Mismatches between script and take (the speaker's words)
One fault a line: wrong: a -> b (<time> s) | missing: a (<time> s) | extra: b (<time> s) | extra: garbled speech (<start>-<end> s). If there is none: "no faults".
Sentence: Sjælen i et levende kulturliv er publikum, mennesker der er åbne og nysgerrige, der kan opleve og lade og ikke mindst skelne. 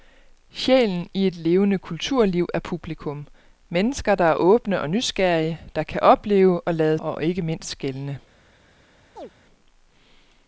no faults